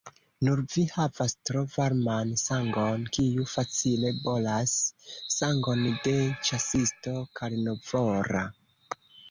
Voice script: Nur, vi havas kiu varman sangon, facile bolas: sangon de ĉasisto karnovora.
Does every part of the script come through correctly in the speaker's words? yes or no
no